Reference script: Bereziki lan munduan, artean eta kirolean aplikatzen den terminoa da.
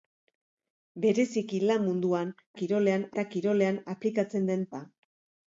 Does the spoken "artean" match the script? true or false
false